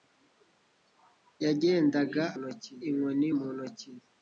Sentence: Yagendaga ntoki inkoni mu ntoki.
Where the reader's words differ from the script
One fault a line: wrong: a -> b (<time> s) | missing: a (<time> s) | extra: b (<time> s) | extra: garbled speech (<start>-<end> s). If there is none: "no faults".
no faults